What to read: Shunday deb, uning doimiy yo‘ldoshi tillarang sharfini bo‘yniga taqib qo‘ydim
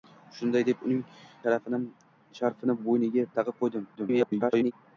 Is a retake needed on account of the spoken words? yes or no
yes